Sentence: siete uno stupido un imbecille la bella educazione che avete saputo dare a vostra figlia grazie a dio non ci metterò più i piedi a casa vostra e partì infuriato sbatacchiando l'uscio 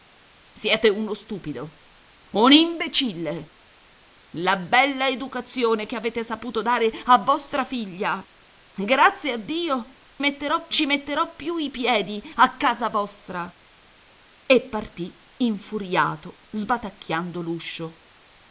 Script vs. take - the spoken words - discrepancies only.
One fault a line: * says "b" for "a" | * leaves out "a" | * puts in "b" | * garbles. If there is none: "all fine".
* says "metterò" for "non"